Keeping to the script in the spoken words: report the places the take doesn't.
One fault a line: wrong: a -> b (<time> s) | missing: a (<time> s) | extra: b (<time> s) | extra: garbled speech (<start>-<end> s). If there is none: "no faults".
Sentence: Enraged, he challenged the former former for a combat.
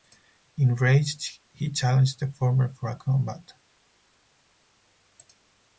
missing: former (2.7 s)